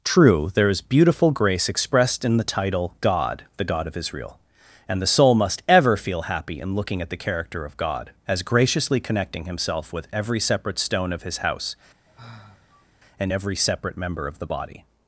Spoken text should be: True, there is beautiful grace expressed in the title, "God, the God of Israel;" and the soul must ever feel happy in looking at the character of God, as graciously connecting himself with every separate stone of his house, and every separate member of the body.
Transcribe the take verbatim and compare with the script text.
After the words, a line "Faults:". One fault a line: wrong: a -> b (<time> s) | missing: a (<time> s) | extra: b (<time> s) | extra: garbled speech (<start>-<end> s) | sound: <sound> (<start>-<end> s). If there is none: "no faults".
True, there is beautiful grace expressed in the title, "God, the God of Israel;" and the soul must ever feel happy in looking at the character of God, as graciously connecting himself with every separate stone of his house, and every separate member of the body.
Faults:
sound: sigh (12.1-12.9 s)